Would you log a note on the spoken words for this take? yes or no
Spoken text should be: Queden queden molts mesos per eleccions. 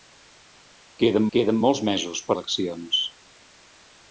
no